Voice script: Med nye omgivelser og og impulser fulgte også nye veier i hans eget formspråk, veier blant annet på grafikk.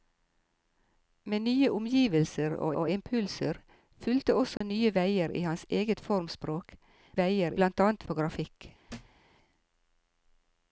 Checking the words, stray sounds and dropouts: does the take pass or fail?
fail